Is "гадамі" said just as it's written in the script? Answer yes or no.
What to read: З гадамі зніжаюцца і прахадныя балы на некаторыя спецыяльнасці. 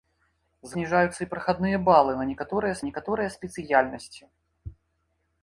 no